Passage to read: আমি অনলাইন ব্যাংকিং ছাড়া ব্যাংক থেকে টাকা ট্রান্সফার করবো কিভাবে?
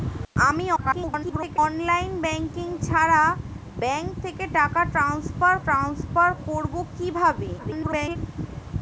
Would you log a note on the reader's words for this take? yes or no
yes